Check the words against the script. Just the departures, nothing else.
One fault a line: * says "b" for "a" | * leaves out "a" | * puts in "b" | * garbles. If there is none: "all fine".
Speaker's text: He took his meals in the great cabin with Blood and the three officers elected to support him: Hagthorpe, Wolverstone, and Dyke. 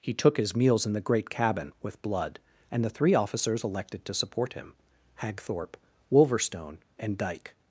all fine